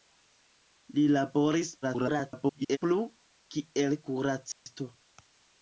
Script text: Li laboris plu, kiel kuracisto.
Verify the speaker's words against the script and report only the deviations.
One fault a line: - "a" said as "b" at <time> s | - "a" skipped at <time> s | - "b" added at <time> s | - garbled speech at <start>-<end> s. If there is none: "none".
- garbled speech at 1.8-2.8 s